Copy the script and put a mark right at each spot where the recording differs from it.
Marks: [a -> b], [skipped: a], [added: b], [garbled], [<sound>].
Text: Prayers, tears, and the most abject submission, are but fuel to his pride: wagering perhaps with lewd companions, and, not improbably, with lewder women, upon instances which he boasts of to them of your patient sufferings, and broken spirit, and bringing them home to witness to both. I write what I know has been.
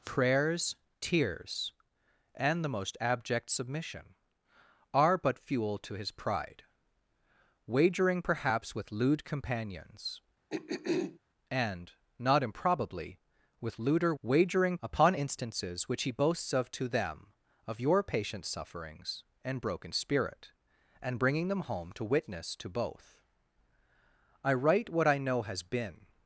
Prayers, tears, and the most abject submission, are but fuel to his pride: wagering perhaps with lewd companions, [throat clearing] and, not improbably, with lewder [women, -> wagering] upon instances which he boasts of to them of your patient sufferings, and broken spirit, and bringing them home to witness to both. I write what I know has been.